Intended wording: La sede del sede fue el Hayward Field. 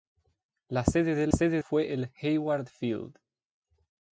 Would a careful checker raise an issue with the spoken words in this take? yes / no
no